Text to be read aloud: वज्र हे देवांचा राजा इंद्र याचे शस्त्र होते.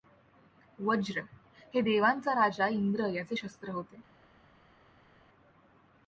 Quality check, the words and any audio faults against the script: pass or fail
pass